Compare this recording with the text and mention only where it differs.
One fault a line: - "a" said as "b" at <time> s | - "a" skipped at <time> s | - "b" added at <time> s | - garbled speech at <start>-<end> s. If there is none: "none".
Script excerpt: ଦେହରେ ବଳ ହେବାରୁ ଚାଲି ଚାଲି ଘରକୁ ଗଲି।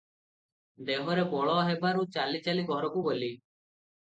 none